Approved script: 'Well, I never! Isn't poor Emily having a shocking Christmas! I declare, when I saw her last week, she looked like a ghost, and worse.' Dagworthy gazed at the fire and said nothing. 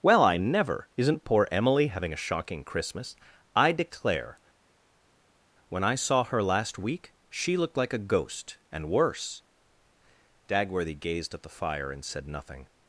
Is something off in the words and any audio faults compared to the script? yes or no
no